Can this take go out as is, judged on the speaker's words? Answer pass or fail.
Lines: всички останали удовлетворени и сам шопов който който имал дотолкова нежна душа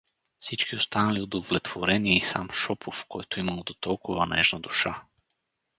fail